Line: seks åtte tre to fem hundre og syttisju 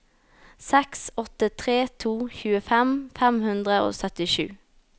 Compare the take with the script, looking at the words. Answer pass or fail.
fail